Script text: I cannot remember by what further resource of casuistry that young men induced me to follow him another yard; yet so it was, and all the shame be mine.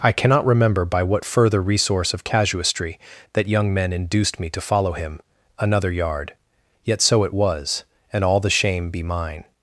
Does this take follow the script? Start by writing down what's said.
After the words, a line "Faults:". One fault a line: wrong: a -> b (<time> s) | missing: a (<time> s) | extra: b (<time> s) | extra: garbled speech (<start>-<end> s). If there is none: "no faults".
I cannot remember by what further resource of casuistry that young men induced me to follow him another yard; yet so it was, and all the shame be mine.
Faults:
no faults